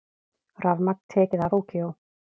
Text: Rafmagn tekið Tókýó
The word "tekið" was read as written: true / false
true